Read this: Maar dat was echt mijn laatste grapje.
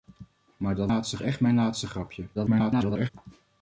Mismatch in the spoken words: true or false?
true